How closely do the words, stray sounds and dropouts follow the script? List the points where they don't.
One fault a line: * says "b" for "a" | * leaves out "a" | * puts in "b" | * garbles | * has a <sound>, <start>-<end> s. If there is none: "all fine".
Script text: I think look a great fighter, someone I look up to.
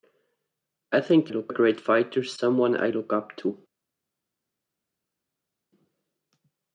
all fine